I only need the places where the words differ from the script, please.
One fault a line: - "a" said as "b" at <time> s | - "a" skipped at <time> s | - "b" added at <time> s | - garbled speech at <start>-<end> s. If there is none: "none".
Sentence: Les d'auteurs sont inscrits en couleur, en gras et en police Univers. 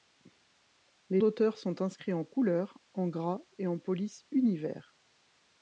none